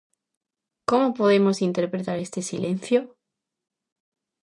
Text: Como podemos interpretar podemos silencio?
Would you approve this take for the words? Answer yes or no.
no